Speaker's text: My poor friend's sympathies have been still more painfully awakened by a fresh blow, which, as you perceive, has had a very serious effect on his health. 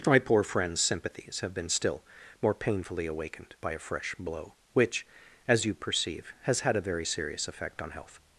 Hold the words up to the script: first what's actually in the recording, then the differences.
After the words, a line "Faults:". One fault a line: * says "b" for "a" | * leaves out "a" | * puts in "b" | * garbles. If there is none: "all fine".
My poor friend's sympathies have been still more painfully awakened by a fresh blow, which, as you perceive, has had a very serious effect on health.
Faults:
* leaves out "his"